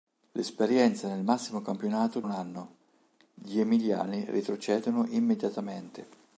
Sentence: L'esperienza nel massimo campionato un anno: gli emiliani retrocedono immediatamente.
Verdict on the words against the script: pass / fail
pass